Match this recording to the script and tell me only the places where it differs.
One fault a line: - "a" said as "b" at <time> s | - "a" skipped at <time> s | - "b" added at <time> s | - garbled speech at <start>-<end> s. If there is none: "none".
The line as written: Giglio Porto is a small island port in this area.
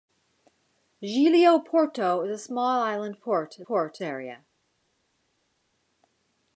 - "this" said as "port" at 3.6 s